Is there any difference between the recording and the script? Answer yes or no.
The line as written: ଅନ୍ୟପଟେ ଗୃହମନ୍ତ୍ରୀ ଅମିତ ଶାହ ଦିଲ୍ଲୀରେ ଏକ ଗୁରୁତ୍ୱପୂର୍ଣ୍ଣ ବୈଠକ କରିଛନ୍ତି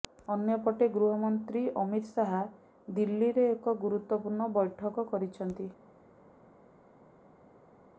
no